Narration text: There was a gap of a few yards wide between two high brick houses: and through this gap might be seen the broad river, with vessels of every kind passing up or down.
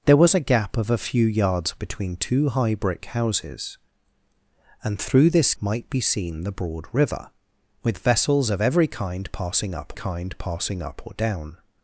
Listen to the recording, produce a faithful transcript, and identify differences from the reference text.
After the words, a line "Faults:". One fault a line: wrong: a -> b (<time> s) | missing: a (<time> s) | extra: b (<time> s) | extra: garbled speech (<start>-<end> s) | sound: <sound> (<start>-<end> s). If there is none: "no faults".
There was a gap of a few yards between two high brick houses: and through this might be seen the broad river, with vessels of every kind passing up kind passing up or down.
Faults:
missing: wide (1.8 s)
missing: gap (5.5 s)
extra: kind passing up (9.9 s)